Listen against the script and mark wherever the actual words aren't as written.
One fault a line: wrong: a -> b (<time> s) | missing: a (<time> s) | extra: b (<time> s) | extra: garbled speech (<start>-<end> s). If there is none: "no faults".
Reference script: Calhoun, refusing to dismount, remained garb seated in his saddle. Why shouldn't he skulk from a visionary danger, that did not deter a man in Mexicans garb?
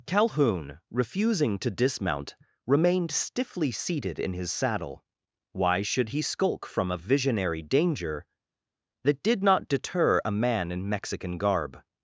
wrong: garb -> stiffly (3.1 s)
wrong: shouldn't -> should (5.8 s)
wrong: Mexicans -> Mexican (10.9 s)